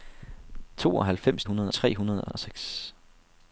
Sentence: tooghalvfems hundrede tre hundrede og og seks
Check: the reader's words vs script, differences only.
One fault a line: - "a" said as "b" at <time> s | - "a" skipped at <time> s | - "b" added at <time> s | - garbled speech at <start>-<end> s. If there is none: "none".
none